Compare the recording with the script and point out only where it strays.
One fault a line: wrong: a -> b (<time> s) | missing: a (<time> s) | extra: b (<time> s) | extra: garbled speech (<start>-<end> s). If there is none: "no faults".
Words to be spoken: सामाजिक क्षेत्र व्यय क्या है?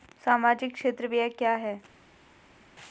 no faults